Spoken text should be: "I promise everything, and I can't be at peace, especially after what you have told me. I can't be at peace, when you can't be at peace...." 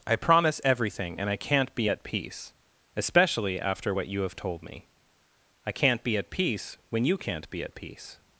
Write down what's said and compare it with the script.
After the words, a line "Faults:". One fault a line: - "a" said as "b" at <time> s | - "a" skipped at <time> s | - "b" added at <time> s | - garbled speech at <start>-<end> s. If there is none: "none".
"I promise everything, and I can't be at peace, especially after what you have told me. I can't be at peace, when you can't be at peace...."
Faults:
none